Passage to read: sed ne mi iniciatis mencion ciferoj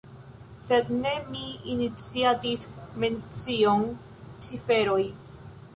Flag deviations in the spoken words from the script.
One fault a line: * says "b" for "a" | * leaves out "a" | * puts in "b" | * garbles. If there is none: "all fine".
all fine